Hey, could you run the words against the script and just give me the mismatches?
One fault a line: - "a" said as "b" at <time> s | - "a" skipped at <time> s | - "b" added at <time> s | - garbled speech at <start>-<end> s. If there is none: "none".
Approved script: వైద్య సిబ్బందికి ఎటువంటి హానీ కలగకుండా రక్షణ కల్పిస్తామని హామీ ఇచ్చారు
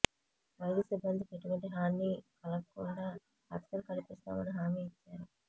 none